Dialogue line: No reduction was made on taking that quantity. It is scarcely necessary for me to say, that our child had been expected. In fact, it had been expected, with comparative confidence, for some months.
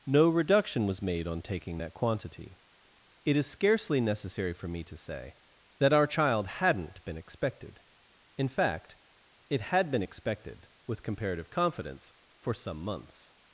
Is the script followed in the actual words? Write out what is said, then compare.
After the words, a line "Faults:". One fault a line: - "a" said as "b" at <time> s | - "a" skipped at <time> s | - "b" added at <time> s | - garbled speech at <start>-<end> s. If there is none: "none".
No reduction was made on taking that quantity. It is scarcely necessary for me to say, that our child hadn't been expected. In fact, it had been expected, with comparative confidence, for some months.
Faults:
- "had" said as "hadn't" at 6.5 s